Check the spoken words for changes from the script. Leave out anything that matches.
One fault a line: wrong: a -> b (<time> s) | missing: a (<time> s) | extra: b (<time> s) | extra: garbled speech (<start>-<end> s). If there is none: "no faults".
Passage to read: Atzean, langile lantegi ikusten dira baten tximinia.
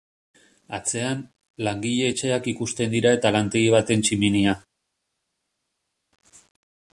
wrong: lantegi -> etxeak (2.1 s)
extra: eta lantegi (3.2 s)